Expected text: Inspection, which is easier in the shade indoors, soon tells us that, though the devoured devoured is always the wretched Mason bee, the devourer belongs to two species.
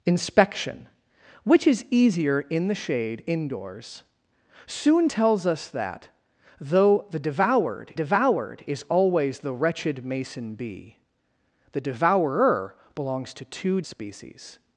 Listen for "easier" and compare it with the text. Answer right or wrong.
right